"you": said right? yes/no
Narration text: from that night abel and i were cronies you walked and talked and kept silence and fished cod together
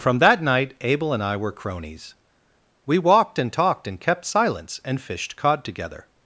no